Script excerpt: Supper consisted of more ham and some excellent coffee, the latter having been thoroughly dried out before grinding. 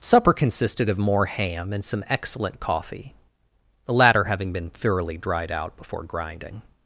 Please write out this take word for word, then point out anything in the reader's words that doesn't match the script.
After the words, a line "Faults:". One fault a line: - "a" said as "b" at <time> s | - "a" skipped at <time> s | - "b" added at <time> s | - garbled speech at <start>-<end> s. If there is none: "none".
Supper consisted of more ham and some excellent coffee, the latter having been thoroughly dried out before grinding.
Faults:
none